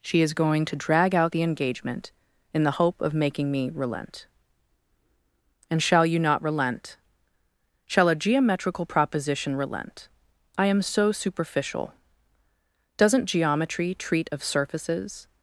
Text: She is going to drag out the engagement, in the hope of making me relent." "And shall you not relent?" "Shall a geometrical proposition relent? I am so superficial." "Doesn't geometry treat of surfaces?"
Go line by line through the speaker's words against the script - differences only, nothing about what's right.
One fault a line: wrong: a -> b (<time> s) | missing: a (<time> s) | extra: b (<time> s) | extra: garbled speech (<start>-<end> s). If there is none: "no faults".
no faults